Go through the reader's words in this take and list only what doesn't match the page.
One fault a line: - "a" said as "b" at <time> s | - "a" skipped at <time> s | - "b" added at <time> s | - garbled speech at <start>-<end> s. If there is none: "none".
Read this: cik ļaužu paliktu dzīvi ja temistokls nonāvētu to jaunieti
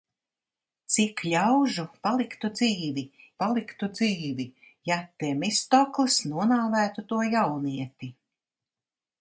- "paliktu dzīvi" added at 3.4 s